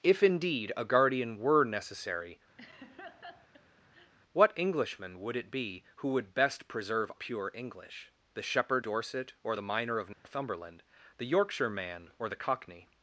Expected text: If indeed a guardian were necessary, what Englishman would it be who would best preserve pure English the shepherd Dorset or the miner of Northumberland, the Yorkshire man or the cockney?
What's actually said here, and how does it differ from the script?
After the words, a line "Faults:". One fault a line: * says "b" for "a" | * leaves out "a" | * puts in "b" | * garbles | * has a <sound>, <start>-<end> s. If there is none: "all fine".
If indeed a guardian were necessary, what Englishman would it be who would best preserve pure English the shepherd Dorset or the miner of Northumberland, the Yorkshire man or the cockney?
Faults:
* has a laugh, 2.6-4.1 s
* has a dropout, 10.1-10.2 s